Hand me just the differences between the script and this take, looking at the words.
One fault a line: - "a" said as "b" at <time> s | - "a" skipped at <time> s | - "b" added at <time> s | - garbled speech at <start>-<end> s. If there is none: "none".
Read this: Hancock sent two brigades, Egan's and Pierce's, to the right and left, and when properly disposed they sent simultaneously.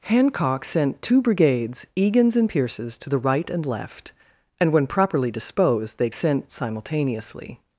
none